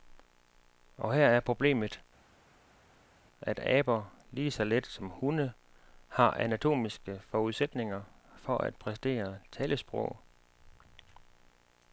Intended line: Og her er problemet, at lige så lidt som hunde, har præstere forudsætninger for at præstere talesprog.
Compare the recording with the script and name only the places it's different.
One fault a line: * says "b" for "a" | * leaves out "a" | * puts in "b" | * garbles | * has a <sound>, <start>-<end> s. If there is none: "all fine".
* puts in "aber"
* says "anatomiske" for "præstere"